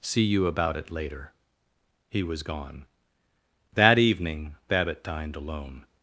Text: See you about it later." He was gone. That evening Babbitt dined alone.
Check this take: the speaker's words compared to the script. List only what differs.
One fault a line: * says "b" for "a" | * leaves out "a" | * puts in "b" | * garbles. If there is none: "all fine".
all fine